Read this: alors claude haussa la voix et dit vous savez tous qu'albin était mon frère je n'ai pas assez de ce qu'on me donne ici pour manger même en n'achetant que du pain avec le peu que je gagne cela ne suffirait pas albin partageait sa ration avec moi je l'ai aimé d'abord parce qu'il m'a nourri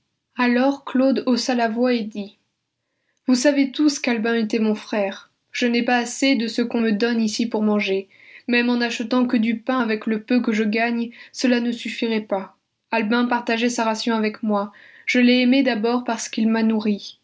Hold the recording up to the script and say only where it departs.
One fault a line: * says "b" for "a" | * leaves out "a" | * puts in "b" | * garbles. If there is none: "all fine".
all fine